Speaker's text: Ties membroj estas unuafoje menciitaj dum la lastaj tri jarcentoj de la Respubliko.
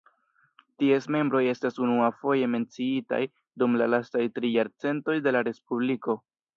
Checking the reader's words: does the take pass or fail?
pass